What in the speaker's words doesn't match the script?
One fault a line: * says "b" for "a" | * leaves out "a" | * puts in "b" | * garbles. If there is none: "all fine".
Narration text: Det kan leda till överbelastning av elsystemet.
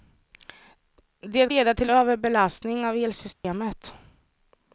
* leaves out "kan"